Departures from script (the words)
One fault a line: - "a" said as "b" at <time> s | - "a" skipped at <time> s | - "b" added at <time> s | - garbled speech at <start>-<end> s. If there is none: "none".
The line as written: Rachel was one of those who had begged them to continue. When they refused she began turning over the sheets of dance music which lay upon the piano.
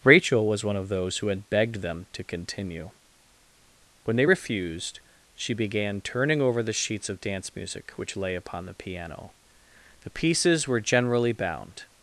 - "The pieces were generally bound" added at 10.0 s